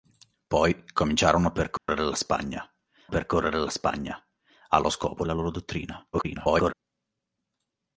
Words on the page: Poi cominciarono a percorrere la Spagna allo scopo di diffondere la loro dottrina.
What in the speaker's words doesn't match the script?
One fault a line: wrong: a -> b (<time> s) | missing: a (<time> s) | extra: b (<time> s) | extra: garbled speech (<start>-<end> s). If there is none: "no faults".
extra: percorrere la Spagna (3.1 s)
missing: di diffondere (5.2 s)
extra: garbled speech (6.1-6.7 s)